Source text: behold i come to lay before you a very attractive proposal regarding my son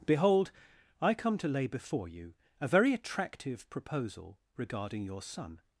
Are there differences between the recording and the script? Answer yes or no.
yes